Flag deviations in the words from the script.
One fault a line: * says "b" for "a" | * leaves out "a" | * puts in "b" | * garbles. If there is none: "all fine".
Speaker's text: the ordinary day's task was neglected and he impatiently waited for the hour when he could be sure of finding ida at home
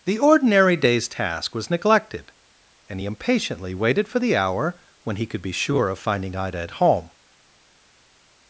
all fine